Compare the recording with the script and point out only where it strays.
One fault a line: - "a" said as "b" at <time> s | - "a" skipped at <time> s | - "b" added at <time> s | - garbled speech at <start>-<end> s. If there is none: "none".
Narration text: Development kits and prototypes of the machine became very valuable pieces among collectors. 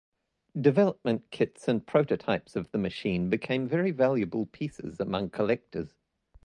none